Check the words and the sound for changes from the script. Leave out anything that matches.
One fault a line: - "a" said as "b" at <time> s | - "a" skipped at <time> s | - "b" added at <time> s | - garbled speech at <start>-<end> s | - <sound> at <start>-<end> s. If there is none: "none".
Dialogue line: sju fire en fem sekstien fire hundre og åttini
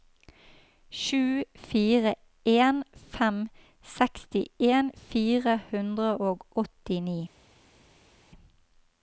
none